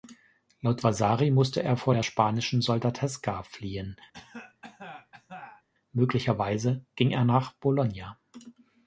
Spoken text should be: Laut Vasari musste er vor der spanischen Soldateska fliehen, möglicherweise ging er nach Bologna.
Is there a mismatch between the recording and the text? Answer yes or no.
no